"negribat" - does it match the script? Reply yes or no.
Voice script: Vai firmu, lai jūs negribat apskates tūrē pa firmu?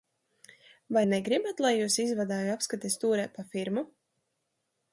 no